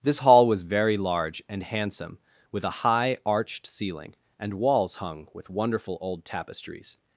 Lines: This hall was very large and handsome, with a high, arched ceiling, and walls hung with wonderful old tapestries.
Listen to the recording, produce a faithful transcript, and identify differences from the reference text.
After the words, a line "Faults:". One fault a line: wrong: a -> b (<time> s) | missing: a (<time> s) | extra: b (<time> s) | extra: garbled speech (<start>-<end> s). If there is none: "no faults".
This hall was very large and handsome, with a high, arched ceiling, and walls hung with wonderful old tapestries.
Faults:
no faults